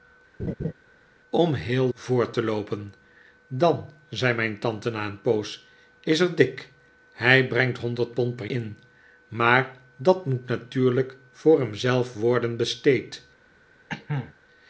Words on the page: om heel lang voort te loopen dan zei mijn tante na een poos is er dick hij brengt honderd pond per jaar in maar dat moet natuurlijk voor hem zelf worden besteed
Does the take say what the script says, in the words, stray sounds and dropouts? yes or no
no